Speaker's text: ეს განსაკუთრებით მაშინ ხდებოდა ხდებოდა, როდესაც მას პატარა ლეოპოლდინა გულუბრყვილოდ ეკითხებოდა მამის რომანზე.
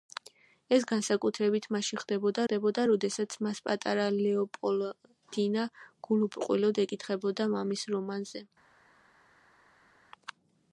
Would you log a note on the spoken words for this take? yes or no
no